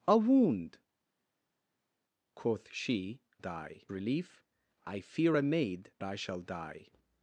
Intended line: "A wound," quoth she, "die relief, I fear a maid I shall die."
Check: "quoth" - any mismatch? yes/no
no